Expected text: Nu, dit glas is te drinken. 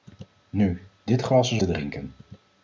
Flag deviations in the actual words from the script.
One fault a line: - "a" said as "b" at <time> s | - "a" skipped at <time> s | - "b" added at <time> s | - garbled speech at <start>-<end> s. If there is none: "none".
none